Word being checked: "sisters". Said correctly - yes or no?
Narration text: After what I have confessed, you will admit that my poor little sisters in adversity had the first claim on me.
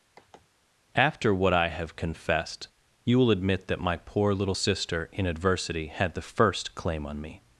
no